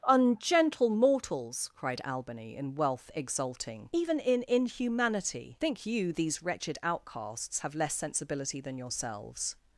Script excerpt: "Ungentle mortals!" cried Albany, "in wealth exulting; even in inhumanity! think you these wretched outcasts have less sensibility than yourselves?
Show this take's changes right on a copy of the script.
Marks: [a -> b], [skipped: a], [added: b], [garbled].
"Ungentle mortals!" cried Albany, "in wealth exulting; even in inhumanity! think you these wretched outcasts have less sensibility than yourselves?